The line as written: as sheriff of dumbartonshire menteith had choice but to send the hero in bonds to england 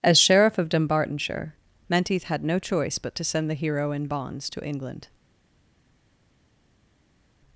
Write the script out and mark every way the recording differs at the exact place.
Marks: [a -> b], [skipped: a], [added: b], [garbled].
as sheriff of dumbartonshire menteith had [added: no] choice but to send the hero in bonds to england